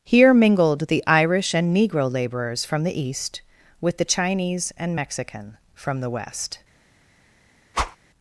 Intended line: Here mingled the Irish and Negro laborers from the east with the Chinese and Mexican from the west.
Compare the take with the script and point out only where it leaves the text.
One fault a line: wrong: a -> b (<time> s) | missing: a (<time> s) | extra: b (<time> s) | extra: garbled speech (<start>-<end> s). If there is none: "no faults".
no faults